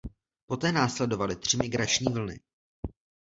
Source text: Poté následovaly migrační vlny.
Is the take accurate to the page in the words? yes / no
no